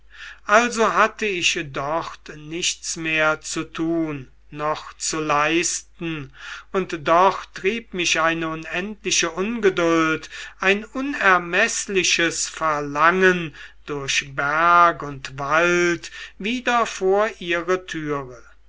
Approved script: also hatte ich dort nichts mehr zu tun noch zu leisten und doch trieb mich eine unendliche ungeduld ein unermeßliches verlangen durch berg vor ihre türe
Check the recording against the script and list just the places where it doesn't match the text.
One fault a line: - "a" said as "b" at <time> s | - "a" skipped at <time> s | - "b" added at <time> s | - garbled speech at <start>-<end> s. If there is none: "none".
- "und wald wieder" added at 15.0 s